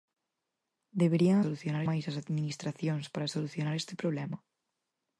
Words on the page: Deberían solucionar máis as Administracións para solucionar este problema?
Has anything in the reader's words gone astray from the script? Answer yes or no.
no